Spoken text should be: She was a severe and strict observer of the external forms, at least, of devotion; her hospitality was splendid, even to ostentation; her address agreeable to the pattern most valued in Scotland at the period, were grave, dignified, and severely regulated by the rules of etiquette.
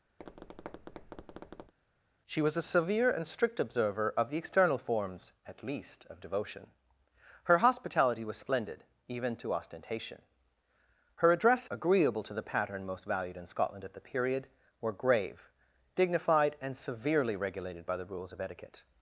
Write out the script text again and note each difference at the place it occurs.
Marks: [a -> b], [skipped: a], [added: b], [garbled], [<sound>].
[tap] She was a severe and strict observer of the external forms, at least, of devotion; her hospitality was splendid, even to ostentation; her address agreeable to the pattern most valued in Scotland at the period, were grave, dignified, and severely regulated by the rules of etiquette.